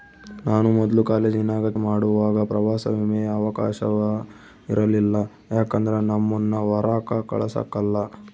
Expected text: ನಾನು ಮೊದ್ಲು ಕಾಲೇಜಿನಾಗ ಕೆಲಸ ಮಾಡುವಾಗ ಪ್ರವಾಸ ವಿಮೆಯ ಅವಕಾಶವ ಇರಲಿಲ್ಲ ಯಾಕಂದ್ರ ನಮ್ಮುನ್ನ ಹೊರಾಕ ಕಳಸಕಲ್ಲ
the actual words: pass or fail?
fail